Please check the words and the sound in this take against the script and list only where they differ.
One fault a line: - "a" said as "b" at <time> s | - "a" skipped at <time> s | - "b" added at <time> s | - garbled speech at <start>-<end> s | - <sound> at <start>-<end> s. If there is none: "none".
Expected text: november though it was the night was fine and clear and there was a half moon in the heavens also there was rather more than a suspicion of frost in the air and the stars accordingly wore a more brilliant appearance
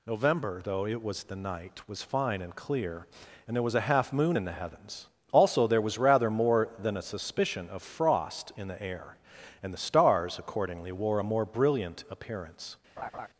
- laugh at 13.0-13.3 s